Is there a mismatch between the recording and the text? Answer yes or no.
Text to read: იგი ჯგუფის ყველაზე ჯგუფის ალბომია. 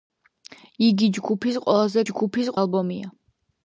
no